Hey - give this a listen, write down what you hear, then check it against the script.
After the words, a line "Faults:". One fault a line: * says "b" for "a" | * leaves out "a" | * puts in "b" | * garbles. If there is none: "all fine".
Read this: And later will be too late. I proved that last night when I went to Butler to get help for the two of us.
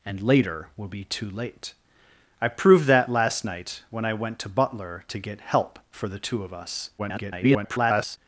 And later will be too late. I proved that last night when I went to Butler to get help for the two of us. [garbled]
Faults:
* garbles